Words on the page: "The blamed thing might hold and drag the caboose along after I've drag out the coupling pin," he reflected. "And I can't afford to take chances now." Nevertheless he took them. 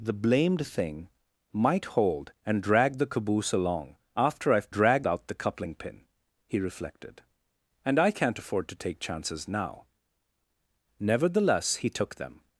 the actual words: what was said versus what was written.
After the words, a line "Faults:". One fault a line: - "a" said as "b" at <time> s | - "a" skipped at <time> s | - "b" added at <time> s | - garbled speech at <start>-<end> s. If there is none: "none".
"The blamed thing might hold and drag the caboose along after I've drag out the coupling pin," he reflected. "And I can't afford to take chances now." Nevertheless he took them.
Faults:
none